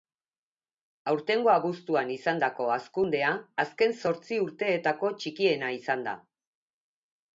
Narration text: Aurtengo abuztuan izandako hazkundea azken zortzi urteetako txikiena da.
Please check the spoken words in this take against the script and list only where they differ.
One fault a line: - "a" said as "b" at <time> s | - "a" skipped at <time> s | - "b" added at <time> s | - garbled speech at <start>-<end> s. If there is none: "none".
- "izan" added at 5.8 s